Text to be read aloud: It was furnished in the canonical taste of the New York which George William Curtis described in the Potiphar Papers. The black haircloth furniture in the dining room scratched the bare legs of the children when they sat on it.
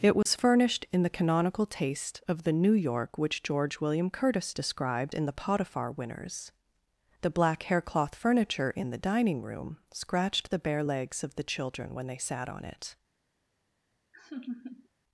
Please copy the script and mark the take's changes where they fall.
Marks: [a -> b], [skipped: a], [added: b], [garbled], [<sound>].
It was [dropout] furnished in the canonical taste of the New York which George William Curtis described in the Potiphar [Papers. -> Winners] The black haircloth furniture in the dining room scratched the bare legs of the children when they sat on it. [laugh]